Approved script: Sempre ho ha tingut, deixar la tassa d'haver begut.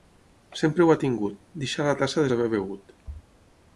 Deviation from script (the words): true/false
false